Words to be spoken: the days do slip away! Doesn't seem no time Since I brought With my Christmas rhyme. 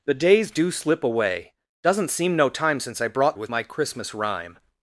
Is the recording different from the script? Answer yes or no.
no